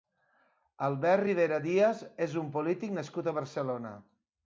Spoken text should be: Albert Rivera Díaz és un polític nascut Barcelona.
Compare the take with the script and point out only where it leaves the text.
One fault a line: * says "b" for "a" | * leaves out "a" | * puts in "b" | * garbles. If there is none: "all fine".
* puts in "a"